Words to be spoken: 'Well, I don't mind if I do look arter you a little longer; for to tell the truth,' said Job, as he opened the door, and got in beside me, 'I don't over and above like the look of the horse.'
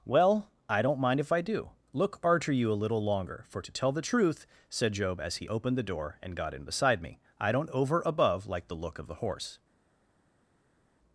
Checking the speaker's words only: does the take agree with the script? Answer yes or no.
no